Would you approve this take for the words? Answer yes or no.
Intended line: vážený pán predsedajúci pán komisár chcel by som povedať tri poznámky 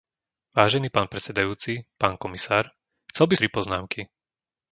no